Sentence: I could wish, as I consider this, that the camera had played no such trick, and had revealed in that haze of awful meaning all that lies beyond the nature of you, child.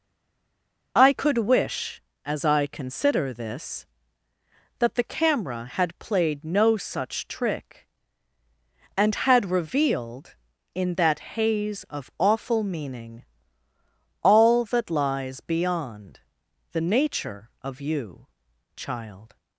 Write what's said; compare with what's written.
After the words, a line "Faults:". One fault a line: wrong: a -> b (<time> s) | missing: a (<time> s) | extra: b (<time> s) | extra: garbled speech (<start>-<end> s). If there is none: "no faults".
I could wish, as I consider this, that the camera had played no such trick, and had revealed in that haze of awful meaning all that lies beyond the nature of you, child.
Faults:
no faults